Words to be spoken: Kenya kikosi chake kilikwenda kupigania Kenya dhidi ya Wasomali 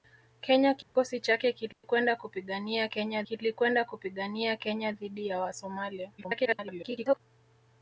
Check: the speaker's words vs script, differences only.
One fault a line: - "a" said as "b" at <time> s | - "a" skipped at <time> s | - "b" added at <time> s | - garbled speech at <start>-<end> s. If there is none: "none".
- "kilikwenda kupigania Kenya" added at 3.2 s
- garbled speech at 6.2-7.2 s